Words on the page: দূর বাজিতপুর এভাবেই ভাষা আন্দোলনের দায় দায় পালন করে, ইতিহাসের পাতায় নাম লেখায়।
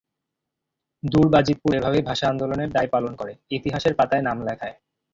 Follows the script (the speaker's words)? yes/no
no